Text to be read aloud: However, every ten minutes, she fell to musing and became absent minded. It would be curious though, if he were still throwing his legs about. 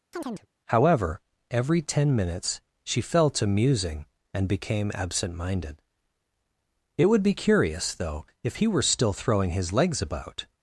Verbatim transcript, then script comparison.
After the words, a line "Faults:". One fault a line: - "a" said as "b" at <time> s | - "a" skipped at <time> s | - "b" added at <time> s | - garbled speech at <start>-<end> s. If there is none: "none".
However, every ten minutes, she fell to musing and became absent minded. It would be curious though, if he were still throwing his legs about.
Faults:
none